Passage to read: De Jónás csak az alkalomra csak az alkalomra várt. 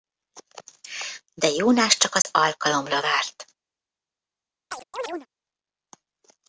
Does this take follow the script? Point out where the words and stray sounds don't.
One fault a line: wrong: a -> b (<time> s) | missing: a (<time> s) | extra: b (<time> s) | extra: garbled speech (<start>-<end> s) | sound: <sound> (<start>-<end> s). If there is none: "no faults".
sound: dropout (2.2-2.2 s)
missing: csak az alkalomra (3.0 s)
sound: chirp (4.7-5.3 s)